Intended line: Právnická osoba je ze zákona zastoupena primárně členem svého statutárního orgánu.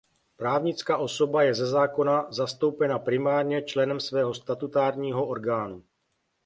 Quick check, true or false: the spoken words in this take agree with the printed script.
true